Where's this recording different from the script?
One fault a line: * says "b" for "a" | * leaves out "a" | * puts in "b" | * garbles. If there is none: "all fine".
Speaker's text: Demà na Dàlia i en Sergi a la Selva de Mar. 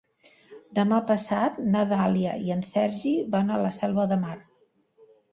* puts in "passat"
* puts in "van"